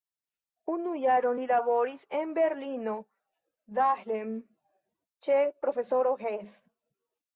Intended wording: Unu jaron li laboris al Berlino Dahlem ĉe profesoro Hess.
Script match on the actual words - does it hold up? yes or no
no